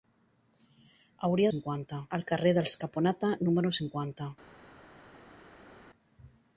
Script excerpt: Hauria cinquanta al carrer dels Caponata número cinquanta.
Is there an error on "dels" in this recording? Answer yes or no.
no